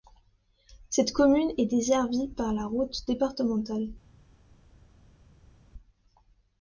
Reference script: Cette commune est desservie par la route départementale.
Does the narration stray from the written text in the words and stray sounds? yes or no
no